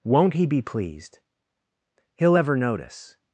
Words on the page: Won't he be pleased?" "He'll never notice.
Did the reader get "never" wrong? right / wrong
wrong